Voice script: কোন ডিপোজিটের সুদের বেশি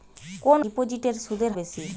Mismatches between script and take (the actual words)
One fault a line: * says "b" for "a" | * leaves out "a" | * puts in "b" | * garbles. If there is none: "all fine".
all fine